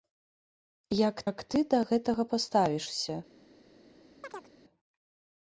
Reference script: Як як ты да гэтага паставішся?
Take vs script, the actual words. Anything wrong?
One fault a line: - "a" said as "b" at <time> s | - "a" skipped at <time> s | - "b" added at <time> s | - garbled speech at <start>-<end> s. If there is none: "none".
none